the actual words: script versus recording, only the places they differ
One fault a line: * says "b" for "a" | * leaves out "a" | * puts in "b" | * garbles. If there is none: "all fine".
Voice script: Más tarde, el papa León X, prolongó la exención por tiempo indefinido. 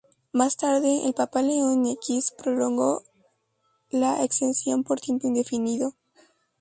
all fine